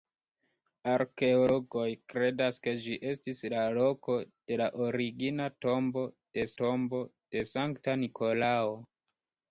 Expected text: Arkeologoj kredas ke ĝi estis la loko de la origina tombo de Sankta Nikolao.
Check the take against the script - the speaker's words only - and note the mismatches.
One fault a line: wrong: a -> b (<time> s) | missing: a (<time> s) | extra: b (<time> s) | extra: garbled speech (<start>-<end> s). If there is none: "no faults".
extra: tombo de (6.6 s)